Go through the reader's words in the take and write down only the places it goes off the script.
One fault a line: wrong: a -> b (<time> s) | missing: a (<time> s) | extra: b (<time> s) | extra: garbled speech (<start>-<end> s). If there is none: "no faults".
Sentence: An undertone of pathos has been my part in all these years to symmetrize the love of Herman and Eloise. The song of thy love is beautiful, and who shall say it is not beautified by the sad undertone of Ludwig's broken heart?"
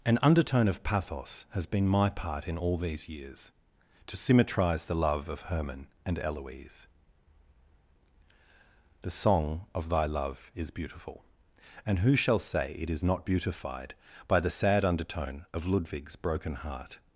no faults